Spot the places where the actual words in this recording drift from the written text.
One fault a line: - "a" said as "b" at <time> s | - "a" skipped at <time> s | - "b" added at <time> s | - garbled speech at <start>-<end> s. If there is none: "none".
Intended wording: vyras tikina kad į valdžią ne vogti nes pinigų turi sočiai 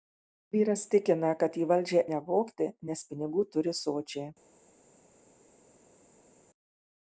none